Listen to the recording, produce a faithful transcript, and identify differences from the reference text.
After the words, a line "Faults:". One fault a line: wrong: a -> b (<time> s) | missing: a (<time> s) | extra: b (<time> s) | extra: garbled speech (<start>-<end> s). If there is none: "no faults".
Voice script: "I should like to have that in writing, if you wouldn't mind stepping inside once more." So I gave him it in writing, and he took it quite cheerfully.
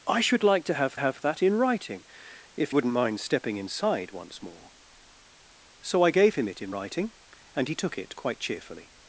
"I should like to have have that in writing, if wouldn't mind stepping inside once more." So I gave him it in writing, and he took it quite cheerfully.
Faults:
extra: have (1.0 s)
missing: you (2.7 s)